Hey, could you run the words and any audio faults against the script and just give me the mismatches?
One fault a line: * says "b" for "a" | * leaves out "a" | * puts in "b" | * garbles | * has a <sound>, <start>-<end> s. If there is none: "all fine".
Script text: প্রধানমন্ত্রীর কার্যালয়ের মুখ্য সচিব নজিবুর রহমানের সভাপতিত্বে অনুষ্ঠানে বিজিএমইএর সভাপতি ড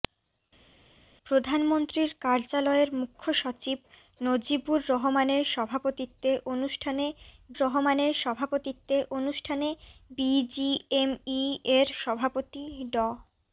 * puts in "রহমানের সভাপতিত্বে অনুষ্ঠানে"